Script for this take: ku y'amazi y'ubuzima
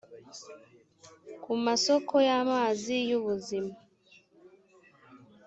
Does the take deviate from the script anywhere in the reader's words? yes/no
yes